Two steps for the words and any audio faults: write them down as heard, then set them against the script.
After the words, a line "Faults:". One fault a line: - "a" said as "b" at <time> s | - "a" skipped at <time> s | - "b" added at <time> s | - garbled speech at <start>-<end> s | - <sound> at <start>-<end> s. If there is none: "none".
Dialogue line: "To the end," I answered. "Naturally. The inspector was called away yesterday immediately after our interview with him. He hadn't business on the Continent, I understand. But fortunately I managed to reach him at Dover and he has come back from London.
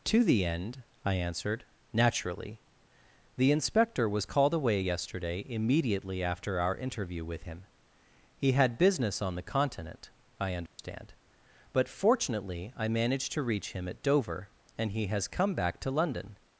"To the end," I answered. "Naturally. The inspector was called away yesterday immediately after our interview with him. He had business on the Continent, I understand. But fortunately I managed to reach him at Dover and he has come back to London.
Faults:
- "hadn't" said as "had" at 8.5 s
- dropout at 10.7-10.8 s
- "from" said as "to" at 15.8 s